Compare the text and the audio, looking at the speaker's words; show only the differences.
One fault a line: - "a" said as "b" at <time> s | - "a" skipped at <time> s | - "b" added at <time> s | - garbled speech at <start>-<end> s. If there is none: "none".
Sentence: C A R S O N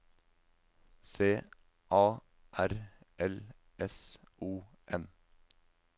- "L" added at 3.2 s